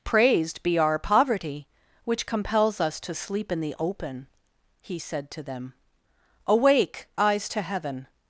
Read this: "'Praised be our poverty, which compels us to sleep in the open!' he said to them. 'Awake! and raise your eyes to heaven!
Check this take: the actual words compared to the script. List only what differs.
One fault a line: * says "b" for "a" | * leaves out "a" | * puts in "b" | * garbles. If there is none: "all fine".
* leaves out "and raise your"